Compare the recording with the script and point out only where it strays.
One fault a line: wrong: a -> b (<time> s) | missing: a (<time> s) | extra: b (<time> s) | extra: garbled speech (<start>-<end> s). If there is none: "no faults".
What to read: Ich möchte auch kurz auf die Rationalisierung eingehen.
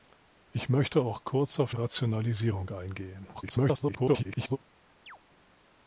missing: die (1.8 s)
extra: garbled speech (3.3-4.6 s)